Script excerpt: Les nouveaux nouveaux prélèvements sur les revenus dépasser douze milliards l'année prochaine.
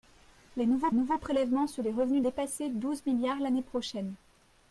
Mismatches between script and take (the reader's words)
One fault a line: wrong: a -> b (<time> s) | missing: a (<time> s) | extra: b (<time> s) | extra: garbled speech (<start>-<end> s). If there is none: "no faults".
no faults